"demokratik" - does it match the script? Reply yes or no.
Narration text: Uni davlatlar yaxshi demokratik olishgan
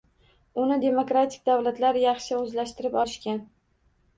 no